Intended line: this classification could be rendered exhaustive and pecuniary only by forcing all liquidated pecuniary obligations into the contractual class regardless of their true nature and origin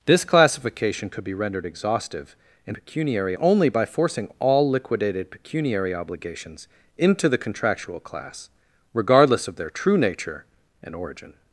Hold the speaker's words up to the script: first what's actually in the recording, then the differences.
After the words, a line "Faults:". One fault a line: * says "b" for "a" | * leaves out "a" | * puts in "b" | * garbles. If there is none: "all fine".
this classification could be rendered exhaustive and pecuniary only by forcing all liquidated pecuniary obligations into the contractual class regardless of their true nature and origin
Faults:
all fine